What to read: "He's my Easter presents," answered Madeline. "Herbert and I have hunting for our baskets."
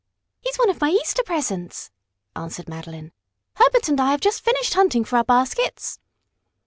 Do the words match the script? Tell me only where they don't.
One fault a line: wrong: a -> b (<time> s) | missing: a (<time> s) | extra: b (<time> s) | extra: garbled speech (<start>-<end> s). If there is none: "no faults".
extra: one of (0.6 s)
extra: just finished (4.2 s)